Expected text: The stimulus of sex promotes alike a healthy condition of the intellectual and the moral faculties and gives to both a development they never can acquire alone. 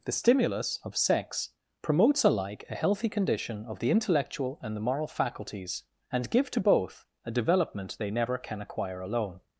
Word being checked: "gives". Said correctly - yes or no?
no